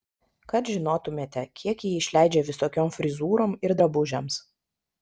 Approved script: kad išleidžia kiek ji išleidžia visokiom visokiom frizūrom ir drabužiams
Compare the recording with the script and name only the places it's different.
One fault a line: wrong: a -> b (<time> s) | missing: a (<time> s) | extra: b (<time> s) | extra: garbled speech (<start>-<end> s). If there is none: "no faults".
wrong: išleidžia -> žinotumėte (0.8 s)
missing: visokiom (2.9 s)